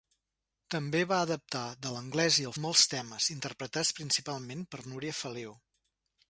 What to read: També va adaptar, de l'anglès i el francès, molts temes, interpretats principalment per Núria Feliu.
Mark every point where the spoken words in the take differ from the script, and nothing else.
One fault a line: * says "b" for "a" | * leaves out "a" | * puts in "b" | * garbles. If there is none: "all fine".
* leaves out "francès"